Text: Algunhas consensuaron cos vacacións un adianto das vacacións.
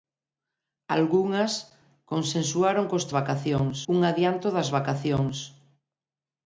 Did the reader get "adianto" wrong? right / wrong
right